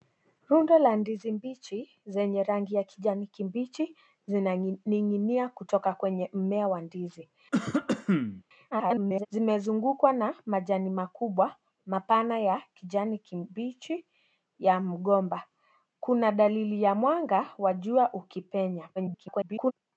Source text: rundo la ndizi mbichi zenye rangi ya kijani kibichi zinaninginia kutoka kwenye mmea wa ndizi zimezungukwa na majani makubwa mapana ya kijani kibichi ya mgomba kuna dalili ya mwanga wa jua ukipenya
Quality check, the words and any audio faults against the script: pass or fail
fail